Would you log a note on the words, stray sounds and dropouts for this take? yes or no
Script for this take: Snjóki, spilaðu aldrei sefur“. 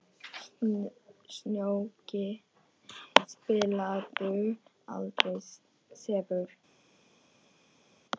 no